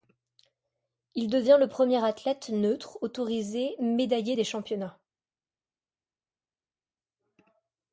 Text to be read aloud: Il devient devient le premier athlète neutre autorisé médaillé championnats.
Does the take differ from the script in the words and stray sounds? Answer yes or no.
yes